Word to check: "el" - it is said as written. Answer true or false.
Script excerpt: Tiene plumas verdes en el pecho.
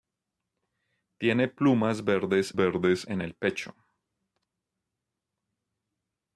true